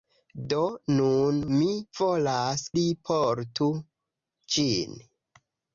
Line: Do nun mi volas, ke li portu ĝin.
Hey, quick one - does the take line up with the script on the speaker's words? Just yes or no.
no